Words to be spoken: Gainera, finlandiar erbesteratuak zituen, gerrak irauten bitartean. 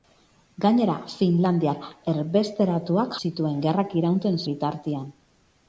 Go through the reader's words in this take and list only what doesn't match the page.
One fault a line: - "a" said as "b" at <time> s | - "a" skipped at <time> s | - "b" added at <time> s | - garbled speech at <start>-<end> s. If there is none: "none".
none